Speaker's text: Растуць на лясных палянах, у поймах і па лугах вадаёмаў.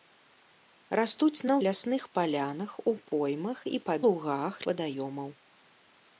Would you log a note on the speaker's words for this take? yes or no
no